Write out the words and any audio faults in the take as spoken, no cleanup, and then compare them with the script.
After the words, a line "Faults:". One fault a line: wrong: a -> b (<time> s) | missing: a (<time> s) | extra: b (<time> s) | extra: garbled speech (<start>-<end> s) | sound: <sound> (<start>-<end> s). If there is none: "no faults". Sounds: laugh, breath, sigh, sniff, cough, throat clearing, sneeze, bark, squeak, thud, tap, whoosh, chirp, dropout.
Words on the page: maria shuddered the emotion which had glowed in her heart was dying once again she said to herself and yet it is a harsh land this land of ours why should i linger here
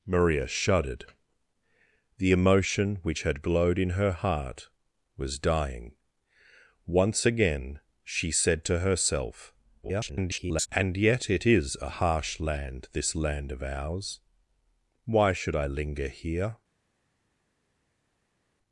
maria shuddered the emotion which had glowed in her heart was dying once again she said to herself [garbled] and yet it is a harsh land this land of ours why should i linger here
Faults:
extra: garbled speech (9.8-10.7 s)